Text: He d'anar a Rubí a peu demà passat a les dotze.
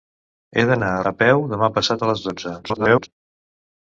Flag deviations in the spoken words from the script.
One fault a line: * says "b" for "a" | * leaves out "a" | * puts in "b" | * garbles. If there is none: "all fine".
* leaves out "Rubí"
* garbles